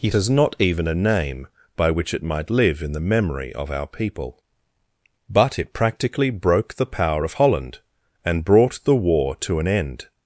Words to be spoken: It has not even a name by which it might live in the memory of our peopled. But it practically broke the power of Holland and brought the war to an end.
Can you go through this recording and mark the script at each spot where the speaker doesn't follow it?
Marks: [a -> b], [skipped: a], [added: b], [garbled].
It has not even a name by which it might live in the memory of our [peopled. -> people] But it practically broke the power of Holland and brought the war to an end.